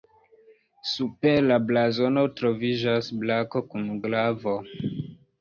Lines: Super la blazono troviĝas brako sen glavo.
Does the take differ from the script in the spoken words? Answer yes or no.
yes